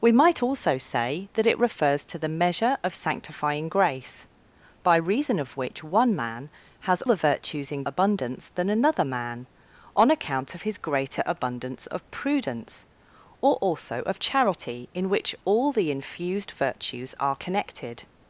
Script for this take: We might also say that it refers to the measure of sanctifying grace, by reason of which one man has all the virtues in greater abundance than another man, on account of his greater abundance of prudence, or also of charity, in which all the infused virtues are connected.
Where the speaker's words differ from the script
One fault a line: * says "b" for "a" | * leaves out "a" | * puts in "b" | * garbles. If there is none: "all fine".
* leaves out "all"
* leaves out "greater"